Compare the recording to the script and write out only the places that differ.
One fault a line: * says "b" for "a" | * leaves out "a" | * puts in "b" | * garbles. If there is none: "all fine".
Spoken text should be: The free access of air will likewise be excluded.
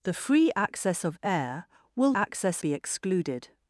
* says "access" for "likewise"